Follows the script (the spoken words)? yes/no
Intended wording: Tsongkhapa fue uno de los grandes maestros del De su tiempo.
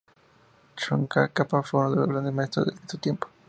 yes